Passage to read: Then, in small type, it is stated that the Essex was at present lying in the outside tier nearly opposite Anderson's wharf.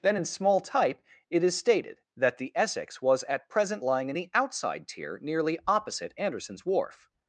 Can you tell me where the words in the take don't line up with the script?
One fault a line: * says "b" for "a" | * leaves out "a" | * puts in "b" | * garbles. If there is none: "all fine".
all fine